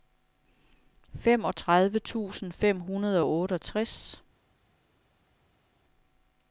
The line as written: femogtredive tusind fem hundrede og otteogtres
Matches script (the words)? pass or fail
pass